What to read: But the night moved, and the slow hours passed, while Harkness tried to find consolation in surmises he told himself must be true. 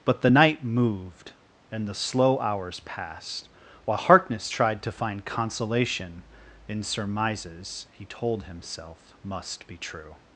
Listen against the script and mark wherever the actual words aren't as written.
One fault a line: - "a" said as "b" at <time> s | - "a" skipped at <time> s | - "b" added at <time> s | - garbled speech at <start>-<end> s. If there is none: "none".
none